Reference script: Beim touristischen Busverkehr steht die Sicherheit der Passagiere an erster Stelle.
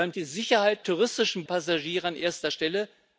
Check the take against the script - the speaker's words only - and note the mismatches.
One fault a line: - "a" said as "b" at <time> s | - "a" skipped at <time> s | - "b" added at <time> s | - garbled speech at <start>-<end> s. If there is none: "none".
- "touristischen Busverkehr steht" skipped at 0.1 s
- "der" said as "touristischen" at 0.8 s